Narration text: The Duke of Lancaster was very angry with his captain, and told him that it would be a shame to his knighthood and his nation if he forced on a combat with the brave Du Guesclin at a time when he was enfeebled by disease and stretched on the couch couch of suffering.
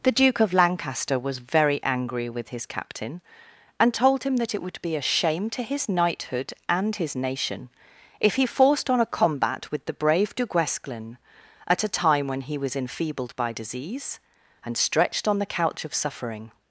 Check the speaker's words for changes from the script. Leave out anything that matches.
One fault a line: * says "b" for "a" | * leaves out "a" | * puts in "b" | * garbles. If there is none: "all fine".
* leaves out "couch"